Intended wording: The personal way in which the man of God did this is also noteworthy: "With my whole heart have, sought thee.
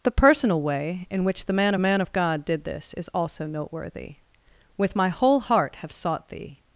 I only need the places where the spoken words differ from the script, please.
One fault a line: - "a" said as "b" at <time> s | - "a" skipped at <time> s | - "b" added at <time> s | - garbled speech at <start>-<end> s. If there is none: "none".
- "man" added at 1.8 s